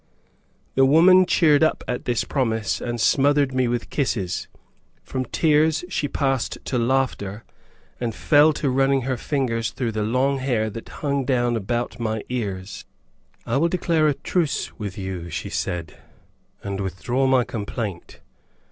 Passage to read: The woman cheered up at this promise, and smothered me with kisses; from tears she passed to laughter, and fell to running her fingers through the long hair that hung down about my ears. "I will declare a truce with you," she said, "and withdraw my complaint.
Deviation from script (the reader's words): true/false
false